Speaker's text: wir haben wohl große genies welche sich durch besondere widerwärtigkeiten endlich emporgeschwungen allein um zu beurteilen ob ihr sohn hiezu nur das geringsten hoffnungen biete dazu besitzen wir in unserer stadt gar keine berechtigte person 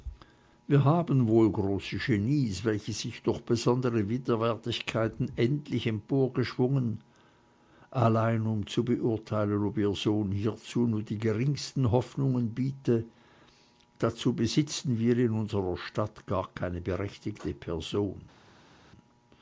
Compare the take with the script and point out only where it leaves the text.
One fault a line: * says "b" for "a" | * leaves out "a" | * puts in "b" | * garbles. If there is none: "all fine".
* says "die" for "das"